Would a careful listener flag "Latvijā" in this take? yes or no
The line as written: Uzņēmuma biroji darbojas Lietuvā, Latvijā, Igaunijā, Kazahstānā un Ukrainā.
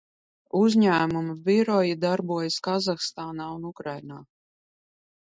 yes